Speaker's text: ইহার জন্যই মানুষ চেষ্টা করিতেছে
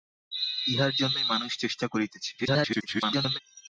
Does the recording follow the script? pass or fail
fail